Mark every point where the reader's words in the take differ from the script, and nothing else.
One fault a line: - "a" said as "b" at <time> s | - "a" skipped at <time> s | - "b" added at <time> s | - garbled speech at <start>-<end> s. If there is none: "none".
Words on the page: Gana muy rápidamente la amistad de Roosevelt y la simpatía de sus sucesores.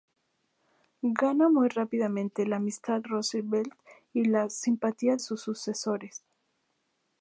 - "de" skipped at 3.0 s
- "de" skipped at 5.2 s